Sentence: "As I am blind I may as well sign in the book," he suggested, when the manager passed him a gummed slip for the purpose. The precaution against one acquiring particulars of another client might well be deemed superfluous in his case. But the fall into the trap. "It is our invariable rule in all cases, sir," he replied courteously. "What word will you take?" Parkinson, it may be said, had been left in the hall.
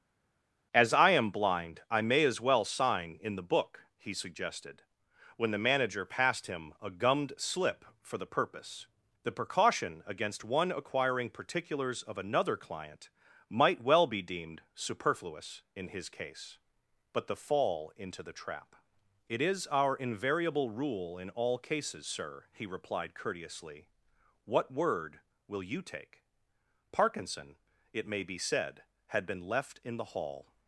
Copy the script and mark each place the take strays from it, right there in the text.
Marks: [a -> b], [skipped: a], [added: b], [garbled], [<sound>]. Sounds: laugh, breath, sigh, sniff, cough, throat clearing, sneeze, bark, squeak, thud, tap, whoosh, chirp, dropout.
"As I am blind I may as well sign in the book," he suggested, when the manager passed him a gummed slip for the purpose. The precaution against one acquiring particulars of another client might well be deemed superfluous in his case. But the fall into the trap. "It is our invariable rule in all cases, sir," he replied courteously. "What word will you take?" Parkinson, it may be said, had been left in the hall.